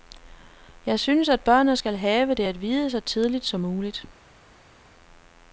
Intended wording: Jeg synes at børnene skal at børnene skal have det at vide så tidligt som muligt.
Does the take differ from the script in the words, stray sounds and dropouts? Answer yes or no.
yes